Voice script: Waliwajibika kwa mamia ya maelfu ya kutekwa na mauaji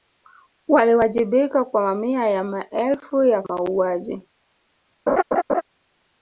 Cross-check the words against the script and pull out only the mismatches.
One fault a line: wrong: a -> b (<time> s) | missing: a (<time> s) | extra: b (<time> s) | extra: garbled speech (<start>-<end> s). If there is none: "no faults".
missing: kutekwa na (3.4 s)